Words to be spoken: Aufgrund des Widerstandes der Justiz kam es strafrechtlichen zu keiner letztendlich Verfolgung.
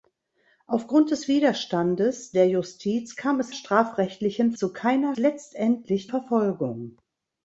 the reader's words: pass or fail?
pass